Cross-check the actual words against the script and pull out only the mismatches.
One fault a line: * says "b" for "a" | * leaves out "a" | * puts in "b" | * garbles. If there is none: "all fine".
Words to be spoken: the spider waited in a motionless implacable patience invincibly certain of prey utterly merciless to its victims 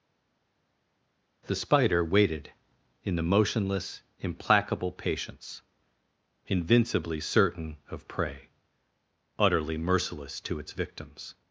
* says "the" for "a"